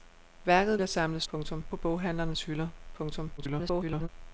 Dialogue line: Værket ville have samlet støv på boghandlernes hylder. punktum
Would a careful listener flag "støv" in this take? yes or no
yes